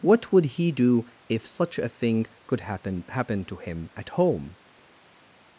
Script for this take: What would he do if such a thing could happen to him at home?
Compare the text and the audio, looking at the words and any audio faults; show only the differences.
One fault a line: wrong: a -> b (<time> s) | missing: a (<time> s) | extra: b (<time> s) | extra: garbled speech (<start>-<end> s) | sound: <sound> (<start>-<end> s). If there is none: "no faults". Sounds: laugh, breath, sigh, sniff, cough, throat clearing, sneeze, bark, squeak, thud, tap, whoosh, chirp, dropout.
extra: happen (3.1 s)